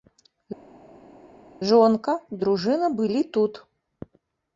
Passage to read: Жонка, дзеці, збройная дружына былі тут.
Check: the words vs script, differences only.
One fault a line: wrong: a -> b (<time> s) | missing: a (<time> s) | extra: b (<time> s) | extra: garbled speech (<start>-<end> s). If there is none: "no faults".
missing: дзеці збройная (2.1 s)